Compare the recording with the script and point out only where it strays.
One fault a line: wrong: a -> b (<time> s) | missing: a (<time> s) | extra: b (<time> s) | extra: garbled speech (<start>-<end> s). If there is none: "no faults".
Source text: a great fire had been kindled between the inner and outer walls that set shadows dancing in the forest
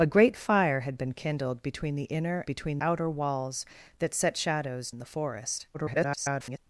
wrong: and -> between (2.4 s)
missing: dancing (4.9 s)
extra: garbled speech (5.7-6.6 s)